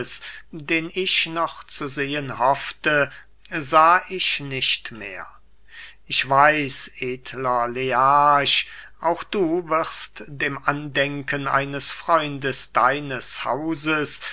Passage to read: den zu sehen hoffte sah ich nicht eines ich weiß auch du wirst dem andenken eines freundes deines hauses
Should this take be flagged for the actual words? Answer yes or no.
yes